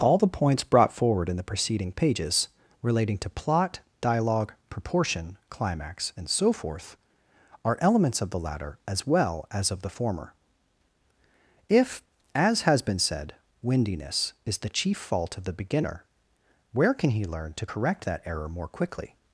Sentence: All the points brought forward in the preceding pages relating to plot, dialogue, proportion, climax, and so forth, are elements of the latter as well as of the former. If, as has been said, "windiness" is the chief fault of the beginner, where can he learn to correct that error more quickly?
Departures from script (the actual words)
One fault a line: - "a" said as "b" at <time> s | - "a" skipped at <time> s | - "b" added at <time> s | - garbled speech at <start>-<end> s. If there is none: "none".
none